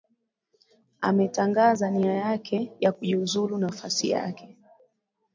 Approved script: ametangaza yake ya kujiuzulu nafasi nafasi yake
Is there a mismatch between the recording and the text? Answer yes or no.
yes